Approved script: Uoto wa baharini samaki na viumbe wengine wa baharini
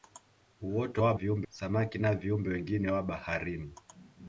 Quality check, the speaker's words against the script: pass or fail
fail